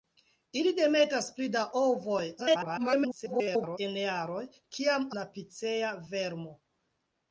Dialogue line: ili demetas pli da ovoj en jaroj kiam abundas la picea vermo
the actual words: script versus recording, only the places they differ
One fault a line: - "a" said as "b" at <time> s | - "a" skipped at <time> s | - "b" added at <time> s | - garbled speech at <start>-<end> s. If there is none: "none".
- garbled speech at 2.4-3.8 s
- "abundas" skipped at 5.1 s